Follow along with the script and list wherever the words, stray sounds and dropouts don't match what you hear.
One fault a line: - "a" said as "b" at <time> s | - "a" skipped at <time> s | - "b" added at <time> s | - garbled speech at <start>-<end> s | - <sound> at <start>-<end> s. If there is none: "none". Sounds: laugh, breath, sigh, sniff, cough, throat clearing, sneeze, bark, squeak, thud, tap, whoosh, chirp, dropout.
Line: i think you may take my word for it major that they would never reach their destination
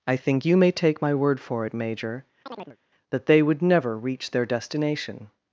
- chirp at 2.5-2.8 s